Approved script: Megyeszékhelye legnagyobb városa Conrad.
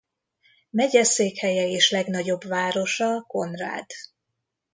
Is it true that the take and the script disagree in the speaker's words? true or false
true